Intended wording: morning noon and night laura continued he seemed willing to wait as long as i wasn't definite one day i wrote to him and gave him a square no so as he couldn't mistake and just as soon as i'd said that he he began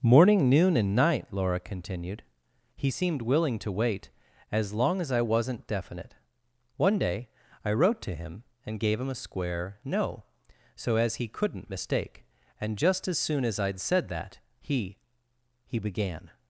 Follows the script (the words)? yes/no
yes